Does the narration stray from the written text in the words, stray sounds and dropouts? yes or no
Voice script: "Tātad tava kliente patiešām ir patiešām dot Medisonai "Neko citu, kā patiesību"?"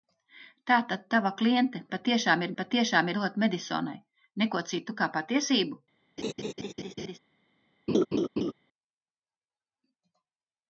yes